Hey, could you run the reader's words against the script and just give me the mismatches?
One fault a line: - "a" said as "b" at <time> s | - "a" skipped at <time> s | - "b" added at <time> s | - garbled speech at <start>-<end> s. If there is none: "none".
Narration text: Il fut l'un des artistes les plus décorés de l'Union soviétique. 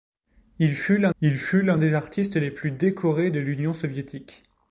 - "il fut l'un" added at 1.2 s